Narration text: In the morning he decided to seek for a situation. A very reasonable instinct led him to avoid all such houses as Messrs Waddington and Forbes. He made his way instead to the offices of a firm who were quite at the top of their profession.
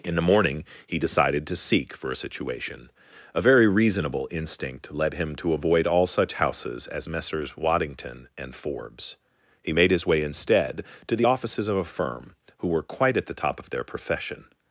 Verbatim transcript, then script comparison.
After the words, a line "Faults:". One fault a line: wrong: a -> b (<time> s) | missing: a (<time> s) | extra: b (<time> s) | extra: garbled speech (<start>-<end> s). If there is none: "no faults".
In the morning he decided to seek for a situation. A very reasonable instinct led him to avoid all such houses as Messrs Waddington and Forbes. He made his way instead to the offices of a firm who were quite at the top of their profession.
Faults:
no faults